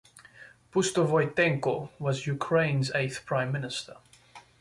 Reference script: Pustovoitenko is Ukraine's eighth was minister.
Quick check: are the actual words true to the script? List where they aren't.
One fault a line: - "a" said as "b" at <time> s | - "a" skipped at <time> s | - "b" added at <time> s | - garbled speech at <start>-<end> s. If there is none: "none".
- "is" said as "was" at 2.0 s
- "was" said as "prime" at 3.2 s